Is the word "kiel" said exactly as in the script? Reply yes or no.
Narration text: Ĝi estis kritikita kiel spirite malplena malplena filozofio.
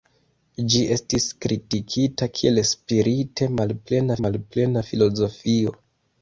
yes